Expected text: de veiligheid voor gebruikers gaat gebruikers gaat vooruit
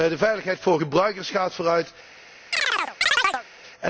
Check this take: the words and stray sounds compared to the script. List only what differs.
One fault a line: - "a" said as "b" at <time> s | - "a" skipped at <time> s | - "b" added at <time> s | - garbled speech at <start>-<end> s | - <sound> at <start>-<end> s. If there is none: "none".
- "gebruikers gaat" skipped at 1.5 s
- chirp at 2.5-3.5 s